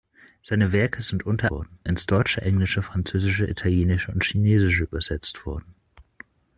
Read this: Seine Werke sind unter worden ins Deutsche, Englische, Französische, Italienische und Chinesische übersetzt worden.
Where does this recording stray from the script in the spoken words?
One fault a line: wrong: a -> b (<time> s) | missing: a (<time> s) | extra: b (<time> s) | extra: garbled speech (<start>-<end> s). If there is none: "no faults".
no faults